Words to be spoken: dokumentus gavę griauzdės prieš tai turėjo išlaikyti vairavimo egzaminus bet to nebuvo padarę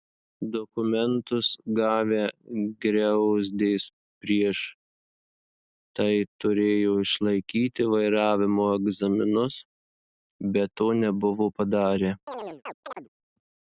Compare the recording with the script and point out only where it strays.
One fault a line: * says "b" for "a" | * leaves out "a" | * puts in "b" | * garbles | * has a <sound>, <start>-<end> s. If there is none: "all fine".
* has a chirp, 12.3-13.1 s